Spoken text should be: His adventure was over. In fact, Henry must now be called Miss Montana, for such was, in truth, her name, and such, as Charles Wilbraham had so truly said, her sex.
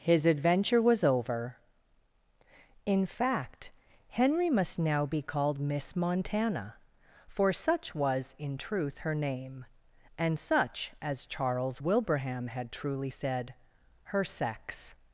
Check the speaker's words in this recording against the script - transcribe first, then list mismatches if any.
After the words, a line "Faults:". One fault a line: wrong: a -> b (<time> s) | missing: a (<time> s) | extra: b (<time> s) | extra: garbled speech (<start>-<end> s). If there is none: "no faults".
His adventure was over. In fact, Henry must now be called Miss Montana, for such was, in truth, her name, and such, as Charles Wilbraham had truly said, her sex.
Faults:
missing: so (12.7 s)